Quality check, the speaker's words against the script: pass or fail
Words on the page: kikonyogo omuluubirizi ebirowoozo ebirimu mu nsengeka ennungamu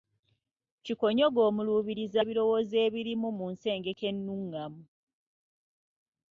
pass